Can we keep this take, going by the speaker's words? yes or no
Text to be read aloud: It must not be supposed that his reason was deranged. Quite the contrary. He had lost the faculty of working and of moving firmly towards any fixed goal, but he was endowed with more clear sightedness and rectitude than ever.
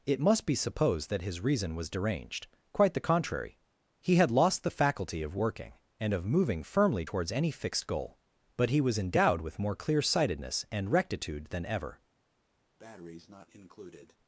no